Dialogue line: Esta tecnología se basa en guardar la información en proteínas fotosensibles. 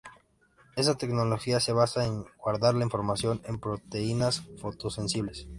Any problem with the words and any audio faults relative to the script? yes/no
no